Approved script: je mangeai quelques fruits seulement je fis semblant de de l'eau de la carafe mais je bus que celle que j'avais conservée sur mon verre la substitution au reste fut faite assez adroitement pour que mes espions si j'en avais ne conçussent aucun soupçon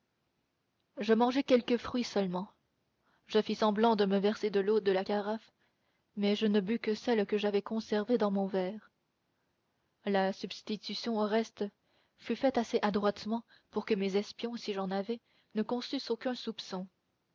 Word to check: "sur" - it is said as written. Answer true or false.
false